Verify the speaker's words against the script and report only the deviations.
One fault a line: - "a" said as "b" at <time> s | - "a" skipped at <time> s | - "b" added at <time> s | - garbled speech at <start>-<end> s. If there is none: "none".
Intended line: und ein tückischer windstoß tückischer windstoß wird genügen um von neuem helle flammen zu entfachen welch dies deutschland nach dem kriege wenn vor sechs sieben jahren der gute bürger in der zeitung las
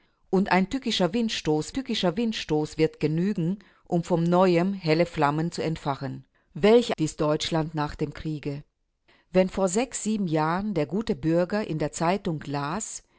none